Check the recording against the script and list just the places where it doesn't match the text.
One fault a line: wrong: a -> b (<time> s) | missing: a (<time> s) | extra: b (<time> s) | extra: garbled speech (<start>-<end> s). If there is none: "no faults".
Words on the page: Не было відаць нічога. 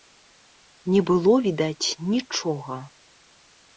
no faults